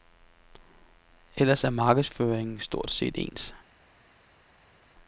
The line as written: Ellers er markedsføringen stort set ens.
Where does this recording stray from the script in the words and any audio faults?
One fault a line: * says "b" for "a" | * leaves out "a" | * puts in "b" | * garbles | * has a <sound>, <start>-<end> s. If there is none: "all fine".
all fine